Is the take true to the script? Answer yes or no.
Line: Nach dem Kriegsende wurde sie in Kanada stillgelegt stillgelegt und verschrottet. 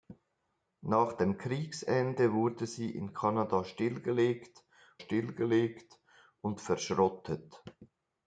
yes